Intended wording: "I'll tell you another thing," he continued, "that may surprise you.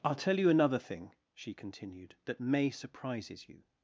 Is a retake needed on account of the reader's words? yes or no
yes